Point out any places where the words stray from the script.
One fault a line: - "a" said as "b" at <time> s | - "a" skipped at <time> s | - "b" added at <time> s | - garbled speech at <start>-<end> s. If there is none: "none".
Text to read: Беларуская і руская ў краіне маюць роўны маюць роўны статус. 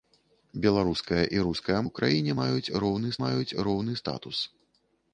none